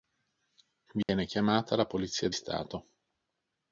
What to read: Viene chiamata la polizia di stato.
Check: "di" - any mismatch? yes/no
yes